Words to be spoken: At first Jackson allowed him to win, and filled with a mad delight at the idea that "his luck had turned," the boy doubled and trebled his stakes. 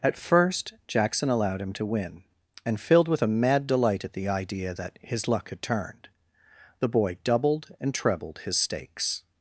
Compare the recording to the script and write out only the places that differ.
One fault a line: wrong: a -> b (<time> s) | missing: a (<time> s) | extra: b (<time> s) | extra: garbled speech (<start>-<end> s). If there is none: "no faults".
no faults